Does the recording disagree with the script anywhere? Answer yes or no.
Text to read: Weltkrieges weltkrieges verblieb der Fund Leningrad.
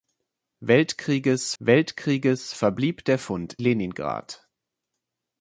no